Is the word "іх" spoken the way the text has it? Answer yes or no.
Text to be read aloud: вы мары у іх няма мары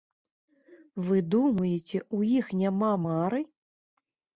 yes